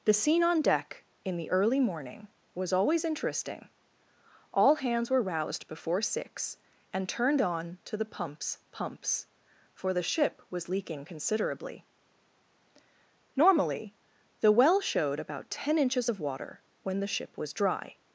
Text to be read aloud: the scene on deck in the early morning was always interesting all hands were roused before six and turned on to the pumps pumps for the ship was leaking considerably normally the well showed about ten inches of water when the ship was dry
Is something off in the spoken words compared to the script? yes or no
no